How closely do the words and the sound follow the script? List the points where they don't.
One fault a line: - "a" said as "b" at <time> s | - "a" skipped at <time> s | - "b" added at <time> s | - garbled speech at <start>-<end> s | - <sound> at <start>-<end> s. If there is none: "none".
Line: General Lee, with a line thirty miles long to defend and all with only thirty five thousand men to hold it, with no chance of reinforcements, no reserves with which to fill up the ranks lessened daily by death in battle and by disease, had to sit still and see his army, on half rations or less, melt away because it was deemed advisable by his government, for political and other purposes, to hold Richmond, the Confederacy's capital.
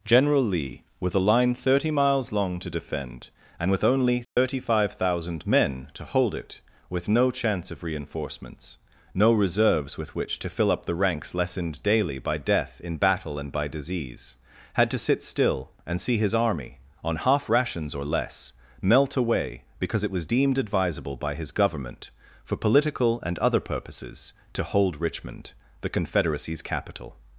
- "all" skipped at 3.7 s
- dropout at 4.2-4.4 s